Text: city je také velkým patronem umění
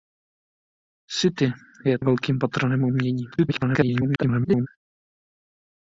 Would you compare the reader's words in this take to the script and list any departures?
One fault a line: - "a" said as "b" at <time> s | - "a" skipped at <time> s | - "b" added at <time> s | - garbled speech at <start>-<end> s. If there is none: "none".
- "také" skipped at 2.0 s
- garbled speech at 3.3-4.7 s